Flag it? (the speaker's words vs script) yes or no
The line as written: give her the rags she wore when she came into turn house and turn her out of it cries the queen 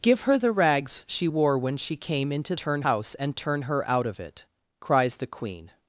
no